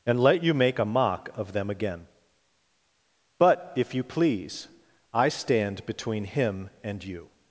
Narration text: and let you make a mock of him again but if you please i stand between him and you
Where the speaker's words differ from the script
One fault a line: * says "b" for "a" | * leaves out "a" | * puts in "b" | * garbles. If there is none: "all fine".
* says "them" for "him"